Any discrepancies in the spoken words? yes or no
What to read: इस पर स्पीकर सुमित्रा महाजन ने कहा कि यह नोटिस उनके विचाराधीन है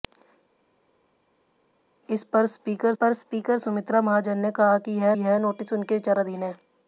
yes